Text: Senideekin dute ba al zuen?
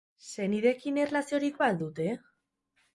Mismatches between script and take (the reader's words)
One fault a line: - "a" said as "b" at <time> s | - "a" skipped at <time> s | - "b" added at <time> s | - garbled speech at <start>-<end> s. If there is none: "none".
- "dute" said as "erlaziorik" at 1.1 s
- "zuen" said as "dute" at 1.8 s